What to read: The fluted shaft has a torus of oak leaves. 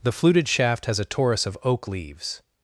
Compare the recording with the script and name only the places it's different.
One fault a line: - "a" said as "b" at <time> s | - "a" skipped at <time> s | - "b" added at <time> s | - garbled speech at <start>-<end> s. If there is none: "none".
none